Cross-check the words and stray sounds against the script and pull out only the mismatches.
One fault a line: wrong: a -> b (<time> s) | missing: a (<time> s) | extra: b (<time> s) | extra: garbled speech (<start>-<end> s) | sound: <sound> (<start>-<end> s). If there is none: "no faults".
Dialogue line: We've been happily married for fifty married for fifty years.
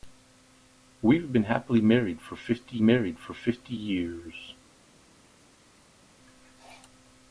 no faults